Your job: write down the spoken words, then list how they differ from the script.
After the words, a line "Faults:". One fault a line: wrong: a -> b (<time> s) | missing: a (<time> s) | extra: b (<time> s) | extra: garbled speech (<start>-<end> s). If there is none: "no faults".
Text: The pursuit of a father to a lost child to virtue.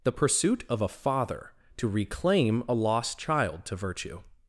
The pursuit of a father to reclaim a lost child to virtue.
Faults:
extra: reclaim (1.9 s)